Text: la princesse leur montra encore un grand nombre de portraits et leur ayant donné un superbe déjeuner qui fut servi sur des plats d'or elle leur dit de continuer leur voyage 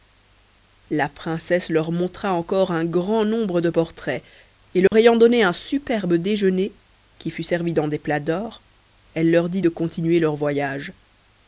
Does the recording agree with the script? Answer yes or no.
no